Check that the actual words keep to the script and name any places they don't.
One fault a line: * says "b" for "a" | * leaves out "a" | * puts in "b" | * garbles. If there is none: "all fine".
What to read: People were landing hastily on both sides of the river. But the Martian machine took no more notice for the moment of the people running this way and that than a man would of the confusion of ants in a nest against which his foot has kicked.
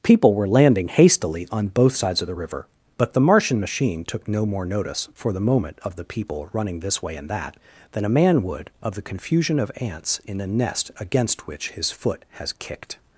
all fine